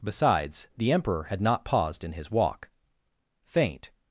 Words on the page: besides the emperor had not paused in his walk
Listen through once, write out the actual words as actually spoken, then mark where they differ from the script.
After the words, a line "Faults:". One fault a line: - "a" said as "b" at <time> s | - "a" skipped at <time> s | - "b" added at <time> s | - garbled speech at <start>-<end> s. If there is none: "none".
besides the emperor had not paused in his walk faint
Faults:
- "faint" added at 3.4 s